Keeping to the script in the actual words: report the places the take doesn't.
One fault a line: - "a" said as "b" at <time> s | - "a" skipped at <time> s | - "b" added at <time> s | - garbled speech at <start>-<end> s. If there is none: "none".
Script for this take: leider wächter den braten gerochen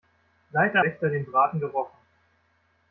none